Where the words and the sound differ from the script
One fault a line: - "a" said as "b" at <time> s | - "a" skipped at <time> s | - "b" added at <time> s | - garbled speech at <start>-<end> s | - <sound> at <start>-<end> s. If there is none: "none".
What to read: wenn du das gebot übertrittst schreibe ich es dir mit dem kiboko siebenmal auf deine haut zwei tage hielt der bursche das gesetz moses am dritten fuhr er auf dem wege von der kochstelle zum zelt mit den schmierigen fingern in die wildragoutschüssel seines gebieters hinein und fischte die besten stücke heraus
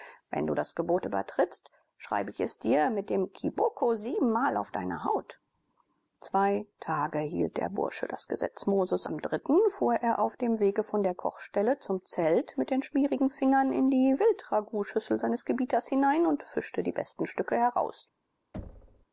- thud at 18.5-19.1 s